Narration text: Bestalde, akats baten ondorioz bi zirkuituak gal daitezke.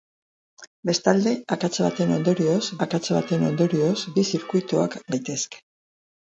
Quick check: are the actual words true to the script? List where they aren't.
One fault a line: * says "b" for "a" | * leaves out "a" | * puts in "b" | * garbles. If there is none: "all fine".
* puts in "akats baten ondorioz"
* leaves out "gal"